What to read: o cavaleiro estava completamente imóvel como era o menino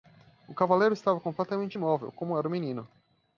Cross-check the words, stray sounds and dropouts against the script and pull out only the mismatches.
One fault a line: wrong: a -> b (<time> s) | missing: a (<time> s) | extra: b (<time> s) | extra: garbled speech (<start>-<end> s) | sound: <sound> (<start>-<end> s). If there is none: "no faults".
no faults